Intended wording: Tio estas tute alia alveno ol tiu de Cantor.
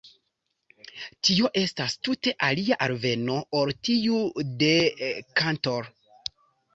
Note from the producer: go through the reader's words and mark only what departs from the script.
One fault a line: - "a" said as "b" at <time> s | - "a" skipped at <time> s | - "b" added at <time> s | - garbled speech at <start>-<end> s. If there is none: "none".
none